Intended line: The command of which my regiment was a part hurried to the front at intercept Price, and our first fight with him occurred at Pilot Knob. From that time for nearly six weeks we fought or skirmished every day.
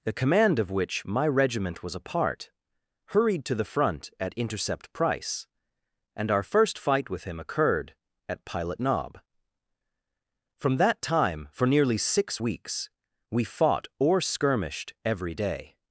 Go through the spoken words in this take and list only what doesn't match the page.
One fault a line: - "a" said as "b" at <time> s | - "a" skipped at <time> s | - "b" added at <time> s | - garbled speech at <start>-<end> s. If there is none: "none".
none